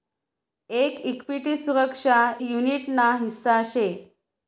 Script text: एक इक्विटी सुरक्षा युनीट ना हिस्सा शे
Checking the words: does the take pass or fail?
pass